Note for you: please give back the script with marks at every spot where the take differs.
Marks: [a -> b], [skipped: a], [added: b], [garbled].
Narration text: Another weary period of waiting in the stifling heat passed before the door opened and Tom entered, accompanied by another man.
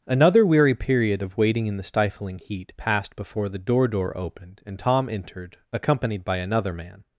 Another weary period of waiting in the stifling heat passed before the door [added: door] opened and Tom entered, accompanied by another man.